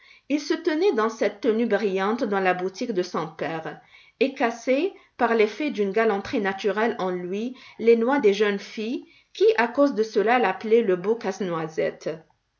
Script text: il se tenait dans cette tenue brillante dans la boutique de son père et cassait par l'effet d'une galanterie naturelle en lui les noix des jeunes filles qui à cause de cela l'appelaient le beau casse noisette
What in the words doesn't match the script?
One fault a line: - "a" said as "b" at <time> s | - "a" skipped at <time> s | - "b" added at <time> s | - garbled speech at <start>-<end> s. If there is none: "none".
none